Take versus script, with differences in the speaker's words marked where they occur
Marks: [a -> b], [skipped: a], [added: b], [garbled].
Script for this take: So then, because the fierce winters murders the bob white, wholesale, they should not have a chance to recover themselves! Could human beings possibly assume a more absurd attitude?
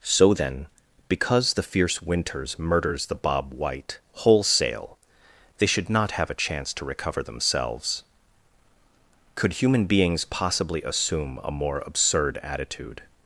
So then, because the fierce winters murders the bob white, wholesale, they should not have a chance to recover themselves! Could human beings possibly assume a more absurd attitude?